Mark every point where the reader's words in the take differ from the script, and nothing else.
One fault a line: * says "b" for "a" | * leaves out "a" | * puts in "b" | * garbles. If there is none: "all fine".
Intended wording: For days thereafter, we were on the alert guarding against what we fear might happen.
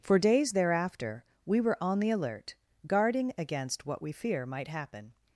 all fine